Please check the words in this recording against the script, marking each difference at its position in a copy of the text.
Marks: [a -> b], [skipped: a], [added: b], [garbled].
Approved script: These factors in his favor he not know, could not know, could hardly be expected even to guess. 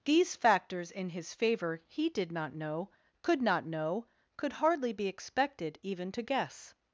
These factors in his favor he [added: did] not know, could not know, could hardly be expected even to guess.